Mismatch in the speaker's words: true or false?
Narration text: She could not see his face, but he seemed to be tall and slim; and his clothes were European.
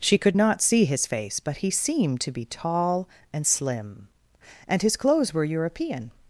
false